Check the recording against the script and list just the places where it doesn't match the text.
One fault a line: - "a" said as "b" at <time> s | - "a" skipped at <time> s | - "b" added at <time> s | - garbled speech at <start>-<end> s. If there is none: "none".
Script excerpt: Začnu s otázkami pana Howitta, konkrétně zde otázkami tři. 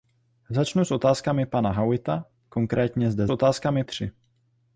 none